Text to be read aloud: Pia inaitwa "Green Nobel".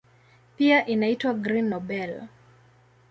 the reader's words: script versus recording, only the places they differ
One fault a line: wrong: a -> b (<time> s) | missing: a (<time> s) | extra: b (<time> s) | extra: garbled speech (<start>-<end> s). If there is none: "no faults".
no faults